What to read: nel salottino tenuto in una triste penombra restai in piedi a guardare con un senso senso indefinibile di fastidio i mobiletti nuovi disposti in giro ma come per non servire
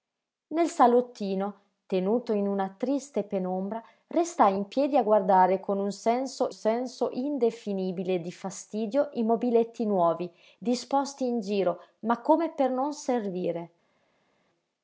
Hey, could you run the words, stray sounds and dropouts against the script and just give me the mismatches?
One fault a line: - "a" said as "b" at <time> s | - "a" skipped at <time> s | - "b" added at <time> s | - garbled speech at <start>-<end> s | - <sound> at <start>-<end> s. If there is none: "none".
none